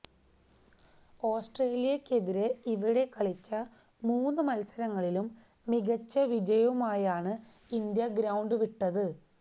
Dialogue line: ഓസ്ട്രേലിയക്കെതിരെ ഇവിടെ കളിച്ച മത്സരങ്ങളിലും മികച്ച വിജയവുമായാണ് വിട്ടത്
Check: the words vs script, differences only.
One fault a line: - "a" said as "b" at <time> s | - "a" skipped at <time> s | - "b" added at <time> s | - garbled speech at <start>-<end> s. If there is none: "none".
- "മൂന്ന്" added at 4.0 s
- "ഇന്ത്യ ഗ്രൌണ്ട്" added at 7.7 s